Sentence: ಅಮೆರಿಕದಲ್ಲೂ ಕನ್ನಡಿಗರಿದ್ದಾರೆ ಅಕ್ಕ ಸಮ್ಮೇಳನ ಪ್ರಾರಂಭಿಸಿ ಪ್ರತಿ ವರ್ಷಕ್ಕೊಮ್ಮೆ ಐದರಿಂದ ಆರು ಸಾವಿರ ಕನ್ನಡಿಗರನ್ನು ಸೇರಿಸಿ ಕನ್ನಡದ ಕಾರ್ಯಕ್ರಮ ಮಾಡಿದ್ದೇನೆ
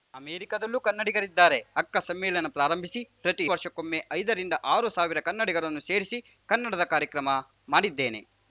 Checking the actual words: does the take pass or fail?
pass